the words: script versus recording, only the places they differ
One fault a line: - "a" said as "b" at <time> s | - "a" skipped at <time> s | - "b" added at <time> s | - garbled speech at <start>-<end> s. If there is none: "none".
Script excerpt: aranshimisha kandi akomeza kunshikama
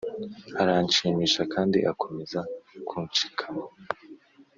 none